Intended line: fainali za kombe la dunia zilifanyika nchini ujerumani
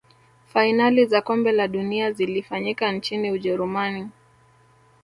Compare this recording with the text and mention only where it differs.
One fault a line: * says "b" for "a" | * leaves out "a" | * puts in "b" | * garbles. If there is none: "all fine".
all fine